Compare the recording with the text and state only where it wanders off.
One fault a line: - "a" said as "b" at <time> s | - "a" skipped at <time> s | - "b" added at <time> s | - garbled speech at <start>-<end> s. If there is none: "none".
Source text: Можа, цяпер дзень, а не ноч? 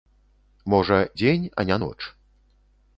- "цяпер" skipped at 1.0 s